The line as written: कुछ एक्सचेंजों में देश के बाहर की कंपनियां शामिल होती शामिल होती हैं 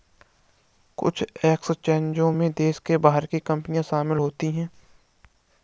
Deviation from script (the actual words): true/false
true